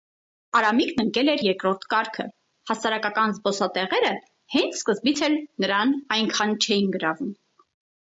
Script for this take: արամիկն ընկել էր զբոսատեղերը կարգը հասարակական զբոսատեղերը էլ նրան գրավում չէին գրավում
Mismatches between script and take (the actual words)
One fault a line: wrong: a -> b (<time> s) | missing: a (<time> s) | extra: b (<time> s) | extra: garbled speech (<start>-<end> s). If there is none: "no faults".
wrong: զբոսատեղերը -> երկրորդ (1.5 s)
extra: հենց սկզբից (4.6 s)
wrong: գրավում -> այնքան (6.2 s)